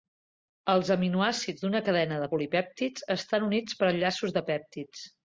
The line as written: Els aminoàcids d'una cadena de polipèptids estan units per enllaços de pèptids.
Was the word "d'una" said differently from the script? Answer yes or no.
no